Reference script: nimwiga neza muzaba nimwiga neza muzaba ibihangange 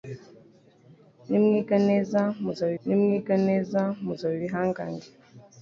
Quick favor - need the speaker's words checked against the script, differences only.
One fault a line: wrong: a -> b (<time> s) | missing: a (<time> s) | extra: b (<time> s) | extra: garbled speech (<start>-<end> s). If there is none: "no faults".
no faults